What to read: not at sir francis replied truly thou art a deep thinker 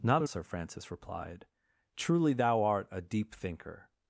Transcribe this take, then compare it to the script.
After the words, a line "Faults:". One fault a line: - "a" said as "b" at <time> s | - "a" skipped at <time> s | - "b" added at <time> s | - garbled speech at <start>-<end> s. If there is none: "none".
not at sir francis replied truly thou art a deep thinker
Faults:
none